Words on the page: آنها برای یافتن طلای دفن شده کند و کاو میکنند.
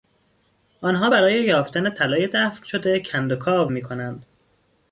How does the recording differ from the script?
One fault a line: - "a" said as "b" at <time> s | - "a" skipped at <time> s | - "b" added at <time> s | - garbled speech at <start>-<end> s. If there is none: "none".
none